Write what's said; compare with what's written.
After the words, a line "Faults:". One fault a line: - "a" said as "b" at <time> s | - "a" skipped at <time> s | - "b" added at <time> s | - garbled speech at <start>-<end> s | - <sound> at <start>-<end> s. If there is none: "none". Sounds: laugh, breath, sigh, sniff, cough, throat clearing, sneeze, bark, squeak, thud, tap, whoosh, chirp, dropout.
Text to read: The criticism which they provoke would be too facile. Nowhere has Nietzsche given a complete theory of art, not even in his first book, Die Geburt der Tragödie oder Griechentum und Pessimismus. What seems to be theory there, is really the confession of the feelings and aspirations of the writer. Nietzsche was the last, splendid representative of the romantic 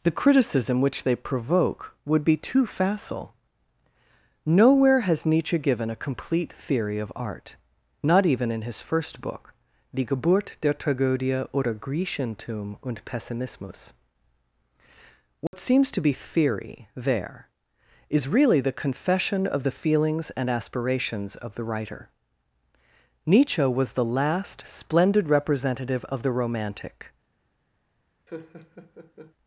The criticism which they provoke would be too facile. Nowhere has Nietzsche given a complete theory of art, not even in his first book, Die Geburt der Tragödie oder Griechentum und Pessimismus. What seems to be theory there, is really the confession of the feelings and aspirations of the writer. Nietzsche was the last, splendid representative of the romantic
Faults:
- dropout at 15.5-15.5 s
- laugh at 28.3-29.3 s